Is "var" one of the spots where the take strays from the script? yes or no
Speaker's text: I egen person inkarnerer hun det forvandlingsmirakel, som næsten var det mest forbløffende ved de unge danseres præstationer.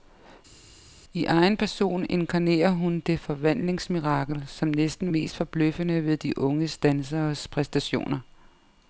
yes